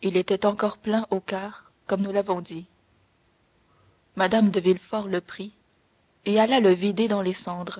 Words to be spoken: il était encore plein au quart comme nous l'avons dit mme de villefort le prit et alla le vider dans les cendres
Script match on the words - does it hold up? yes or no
yes